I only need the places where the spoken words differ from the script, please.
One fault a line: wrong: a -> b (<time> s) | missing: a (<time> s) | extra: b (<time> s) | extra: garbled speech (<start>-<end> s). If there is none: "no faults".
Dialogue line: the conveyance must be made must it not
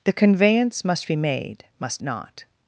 missing: it (2.0 s)